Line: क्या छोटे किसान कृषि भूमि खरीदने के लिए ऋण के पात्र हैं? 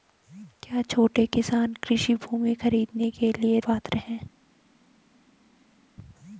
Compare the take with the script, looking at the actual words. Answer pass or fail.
fail